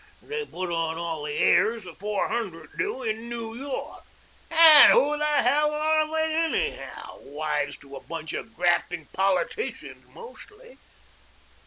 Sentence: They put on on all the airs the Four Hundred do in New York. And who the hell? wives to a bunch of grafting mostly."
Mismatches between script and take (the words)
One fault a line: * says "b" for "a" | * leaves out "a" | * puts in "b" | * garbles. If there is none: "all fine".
* leaves out "on"
* puts in "are they anyhow"
* puts in "politicians"